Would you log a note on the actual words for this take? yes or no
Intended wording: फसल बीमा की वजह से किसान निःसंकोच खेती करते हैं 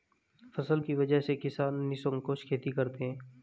yes